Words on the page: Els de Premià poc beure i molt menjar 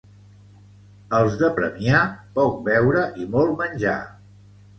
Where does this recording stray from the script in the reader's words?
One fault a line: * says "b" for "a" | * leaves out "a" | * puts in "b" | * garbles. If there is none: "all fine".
all fine